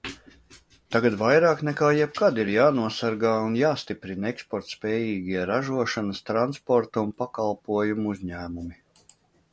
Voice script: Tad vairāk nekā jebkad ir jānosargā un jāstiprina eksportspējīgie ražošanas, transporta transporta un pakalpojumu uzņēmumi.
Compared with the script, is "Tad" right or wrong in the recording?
wrong